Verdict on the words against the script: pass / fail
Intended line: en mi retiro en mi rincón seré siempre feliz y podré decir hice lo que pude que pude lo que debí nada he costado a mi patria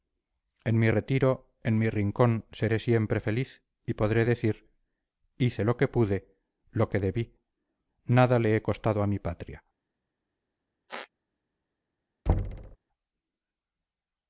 fail